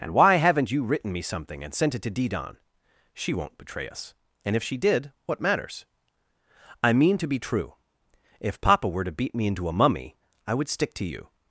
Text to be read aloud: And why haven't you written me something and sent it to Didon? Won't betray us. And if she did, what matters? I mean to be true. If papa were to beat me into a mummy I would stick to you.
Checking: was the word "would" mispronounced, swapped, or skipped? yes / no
no